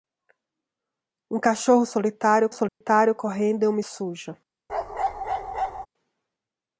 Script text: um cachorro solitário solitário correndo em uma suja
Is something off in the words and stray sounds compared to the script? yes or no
yes